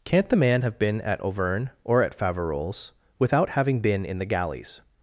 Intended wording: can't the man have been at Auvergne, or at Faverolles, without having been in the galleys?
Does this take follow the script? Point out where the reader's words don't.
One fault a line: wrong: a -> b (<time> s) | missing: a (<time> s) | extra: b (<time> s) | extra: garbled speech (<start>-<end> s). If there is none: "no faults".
no faults